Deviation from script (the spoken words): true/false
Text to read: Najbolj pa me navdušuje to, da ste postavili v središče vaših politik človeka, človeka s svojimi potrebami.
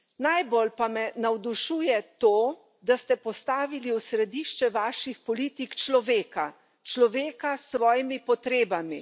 false